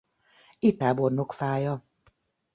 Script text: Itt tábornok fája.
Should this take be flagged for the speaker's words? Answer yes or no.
no